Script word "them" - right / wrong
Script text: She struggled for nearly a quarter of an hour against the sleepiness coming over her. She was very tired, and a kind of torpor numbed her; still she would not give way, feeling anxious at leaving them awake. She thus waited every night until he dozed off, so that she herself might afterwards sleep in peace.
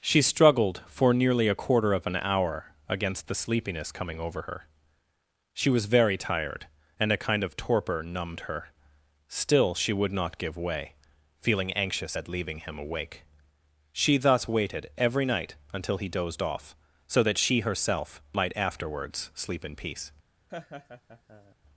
wrong